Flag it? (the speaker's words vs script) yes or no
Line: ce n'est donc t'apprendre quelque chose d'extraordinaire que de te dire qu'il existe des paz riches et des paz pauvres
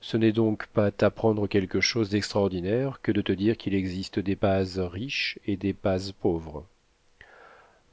yes